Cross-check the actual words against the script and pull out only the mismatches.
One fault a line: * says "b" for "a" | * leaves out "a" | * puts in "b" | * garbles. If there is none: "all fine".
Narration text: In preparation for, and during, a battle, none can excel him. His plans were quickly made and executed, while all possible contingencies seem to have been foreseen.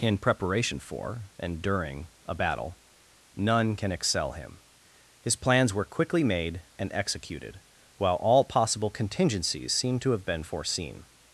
all fine